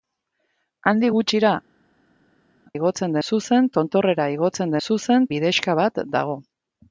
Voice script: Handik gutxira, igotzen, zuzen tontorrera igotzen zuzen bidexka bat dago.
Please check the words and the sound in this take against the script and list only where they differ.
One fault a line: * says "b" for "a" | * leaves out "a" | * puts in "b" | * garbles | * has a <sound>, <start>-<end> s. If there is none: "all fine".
all fine